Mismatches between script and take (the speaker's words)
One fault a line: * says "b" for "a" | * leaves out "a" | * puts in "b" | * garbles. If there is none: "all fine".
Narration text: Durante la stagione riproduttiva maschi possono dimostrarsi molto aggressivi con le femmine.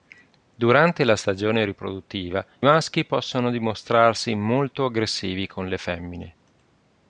all fine